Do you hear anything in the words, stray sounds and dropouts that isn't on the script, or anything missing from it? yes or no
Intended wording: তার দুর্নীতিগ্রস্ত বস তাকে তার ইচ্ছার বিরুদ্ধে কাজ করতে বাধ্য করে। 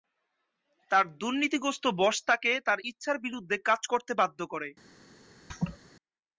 yes